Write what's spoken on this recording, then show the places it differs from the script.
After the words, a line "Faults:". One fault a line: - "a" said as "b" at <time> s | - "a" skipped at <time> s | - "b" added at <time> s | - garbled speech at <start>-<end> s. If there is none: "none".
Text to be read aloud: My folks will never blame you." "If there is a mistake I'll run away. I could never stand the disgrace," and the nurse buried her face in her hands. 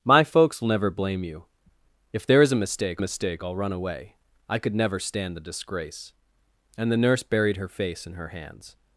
My folks will never blame you." "If there is a mistake mistake I'll run away. I could never stand the disgrace," and the nurse buried her face in her hands.
Faults:
- "mistake" added at 3.0 s